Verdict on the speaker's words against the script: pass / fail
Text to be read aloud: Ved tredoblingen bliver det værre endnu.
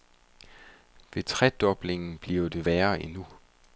pass